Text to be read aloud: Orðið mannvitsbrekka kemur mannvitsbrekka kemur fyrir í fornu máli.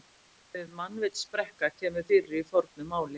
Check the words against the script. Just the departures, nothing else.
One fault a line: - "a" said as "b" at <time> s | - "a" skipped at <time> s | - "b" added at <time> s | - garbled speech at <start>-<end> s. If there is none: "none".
- "mannvitsbrekka kemur" skipped at 2.1 s